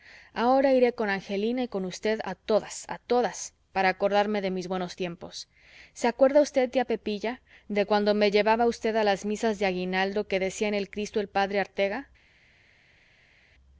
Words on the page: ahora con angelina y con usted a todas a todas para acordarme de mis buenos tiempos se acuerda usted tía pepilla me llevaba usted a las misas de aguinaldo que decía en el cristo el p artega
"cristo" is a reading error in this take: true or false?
false